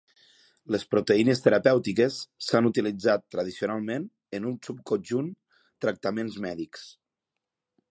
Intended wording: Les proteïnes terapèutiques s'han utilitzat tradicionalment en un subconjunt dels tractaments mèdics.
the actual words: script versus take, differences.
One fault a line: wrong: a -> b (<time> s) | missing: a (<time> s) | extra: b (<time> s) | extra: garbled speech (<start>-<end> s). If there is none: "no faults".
missing: dels (5.3 s)